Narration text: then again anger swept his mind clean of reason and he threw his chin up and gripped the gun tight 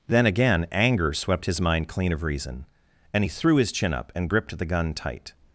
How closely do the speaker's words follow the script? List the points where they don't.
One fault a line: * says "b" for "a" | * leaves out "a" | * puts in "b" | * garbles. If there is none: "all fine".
all fine